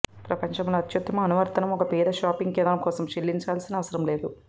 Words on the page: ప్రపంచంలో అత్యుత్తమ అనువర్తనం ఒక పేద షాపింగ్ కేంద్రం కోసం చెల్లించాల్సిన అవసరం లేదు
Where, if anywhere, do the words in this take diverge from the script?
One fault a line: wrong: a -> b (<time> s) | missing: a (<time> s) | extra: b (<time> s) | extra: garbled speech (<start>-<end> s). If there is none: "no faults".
no faults